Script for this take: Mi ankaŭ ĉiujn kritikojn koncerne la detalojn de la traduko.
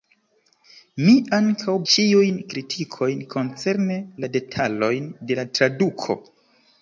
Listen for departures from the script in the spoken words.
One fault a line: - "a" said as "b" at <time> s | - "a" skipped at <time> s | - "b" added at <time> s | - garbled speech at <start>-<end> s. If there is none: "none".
none